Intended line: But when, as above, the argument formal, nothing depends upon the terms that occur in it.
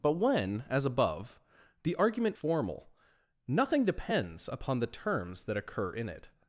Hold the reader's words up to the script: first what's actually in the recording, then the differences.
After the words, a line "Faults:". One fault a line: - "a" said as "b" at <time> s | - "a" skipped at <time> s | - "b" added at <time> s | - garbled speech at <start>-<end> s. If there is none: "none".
But when, as above, the argument formal, nothing depends upon the terms that occur in it.
Faults:
none